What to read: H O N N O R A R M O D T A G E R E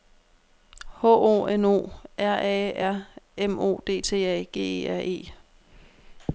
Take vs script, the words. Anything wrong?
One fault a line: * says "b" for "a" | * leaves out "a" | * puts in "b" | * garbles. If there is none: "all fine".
* leaves out "N"